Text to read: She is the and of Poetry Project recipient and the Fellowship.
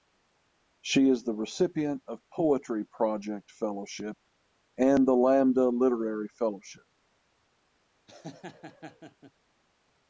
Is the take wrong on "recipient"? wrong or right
wrong